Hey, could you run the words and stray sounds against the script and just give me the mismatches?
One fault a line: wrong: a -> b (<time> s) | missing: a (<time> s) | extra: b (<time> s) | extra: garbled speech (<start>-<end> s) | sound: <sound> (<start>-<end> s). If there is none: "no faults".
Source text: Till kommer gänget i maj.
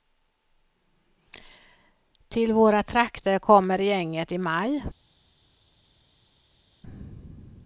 extra: våra trakter (2.5 s)